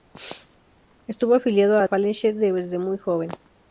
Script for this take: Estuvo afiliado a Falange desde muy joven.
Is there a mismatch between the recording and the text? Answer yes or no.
no